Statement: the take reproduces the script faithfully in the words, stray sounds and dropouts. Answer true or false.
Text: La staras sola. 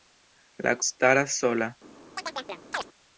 false